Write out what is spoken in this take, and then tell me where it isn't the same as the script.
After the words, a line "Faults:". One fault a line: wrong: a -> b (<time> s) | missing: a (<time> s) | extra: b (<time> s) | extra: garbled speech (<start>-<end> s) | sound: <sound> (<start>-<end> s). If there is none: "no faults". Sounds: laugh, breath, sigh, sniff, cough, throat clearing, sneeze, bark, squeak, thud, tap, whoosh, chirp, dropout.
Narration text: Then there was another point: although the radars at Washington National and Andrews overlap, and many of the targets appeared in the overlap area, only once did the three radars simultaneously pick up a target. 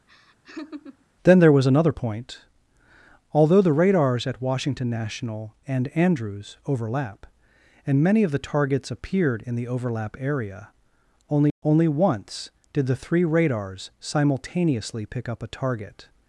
Then there was another point: although the radars at Washington National and Andrews overlap, and many of the targets appeared in the overlap area, only only once did the three radars simultaneously pick up a target.
Faults:
sound: laugh (0.1-1.1 s)
extra: only (11.6 s)